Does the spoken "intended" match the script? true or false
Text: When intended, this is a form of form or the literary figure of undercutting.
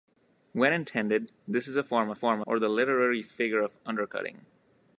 true